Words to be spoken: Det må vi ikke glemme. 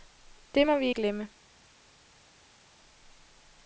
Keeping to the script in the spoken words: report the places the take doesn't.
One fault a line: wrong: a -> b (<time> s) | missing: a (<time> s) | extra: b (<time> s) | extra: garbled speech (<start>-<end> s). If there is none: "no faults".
missing: ikke (0.9 s)